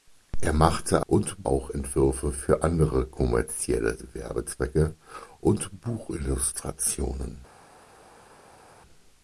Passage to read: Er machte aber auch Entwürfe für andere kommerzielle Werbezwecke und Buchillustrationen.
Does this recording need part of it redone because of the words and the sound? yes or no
yes